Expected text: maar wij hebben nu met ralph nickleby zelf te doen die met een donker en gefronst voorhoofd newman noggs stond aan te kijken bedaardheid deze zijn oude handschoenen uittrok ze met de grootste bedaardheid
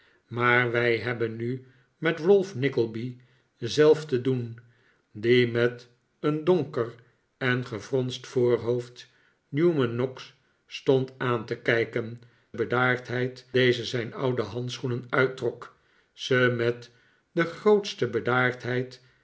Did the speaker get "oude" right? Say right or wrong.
right